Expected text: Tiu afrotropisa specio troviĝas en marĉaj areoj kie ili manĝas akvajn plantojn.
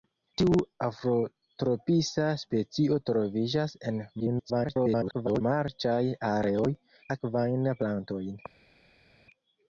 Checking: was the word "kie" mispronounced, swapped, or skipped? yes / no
yes